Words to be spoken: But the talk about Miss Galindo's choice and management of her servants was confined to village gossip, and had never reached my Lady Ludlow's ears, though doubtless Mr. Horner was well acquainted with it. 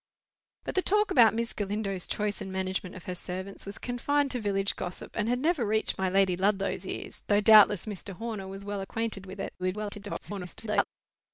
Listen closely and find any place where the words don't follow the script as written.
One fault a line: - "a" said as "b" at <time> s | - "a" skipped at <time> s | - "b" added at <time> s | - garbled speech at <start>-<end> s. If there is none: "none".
- garbled speech at 9.6-10.8 s